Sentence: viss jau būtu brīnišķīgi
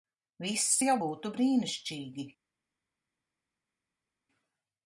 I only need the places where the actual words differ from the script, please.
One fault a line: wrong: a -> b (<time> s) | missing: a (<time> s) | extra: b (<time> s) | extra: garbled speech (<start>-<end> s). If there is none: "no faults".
no faults